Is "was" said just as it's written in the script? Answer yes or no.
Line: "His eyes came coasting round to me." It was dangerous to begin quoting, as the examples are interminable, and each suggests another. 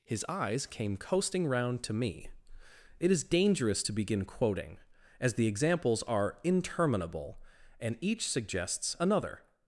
no